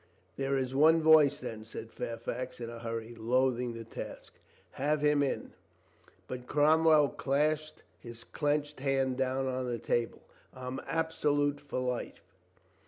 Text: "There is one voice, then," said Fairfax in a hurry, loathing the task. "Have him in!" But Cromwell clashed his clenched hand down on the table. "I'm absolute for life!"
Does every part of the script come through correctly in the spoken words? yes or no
yes